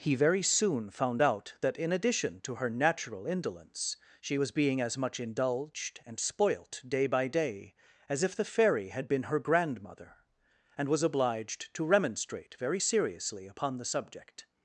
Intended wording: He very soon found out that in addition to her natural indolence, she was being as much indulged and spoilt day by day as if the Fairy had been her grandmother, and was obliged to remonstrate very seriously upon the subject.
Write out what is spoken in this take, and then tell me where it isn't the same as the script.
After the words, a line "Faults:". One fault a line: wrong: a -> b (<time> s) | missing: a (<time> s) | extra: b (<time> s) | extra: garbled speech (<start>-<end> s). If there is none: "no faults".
He very soon found out that in addition to her natural indolence, she was being as much indulged and spoilt day by day as if the Fairy had been her grandmother, and was obliged to remonstrate very seriously upon the subject.
Faults:
no faults